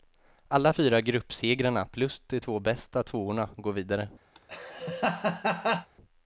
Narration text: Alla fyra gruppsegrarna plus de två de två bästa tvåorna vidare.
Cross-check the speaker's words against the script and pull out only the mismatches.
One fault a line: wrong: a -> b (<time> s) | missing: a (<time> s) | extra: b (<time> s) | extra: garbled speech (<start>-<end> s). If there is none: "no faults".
missing: de två (2.6 s)
extra: går (3.6 s)